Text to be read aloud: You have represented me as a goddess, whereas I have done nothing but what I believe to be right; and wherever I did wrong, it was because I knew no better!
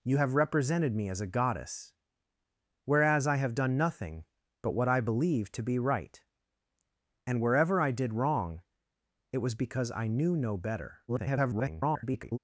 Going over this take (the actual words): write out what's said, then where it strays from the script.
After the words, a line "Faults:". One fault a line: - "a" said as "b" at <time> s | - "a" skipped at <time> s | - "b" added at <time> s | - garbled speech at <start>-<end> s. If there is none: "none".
You have represented me as a goddess, whereas I have done nothing but what I believe to be right; and wherever I did wrong, it was because I knew no better! [garbled]
Faults:
- garbled speech at 11.1-12.4 s